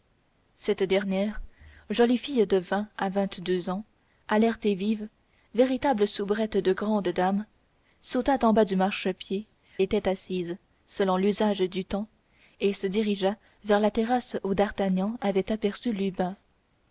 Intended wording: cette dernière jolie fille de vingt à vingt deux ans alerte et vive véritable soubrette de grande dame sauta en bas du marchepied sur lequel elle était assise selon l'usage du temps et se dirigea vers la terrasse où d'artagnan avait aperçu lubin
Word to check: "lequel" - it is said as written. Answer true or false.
false